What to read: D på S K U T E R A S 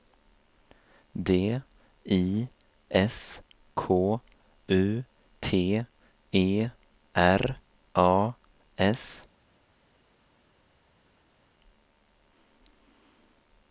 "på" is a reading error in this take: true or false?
true